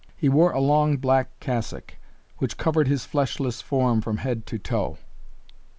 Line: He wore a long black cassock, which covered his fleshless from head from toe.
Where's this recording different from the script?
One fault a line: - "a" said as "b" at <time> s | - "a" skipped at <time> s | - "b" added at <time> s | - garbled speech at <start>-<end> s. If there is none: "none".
- "form" added at 3.6 s
- "from" said as "to" at 4.4 s